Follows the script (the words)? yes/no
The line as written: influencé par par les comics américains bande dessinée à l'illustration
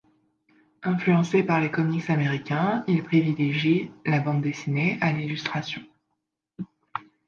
no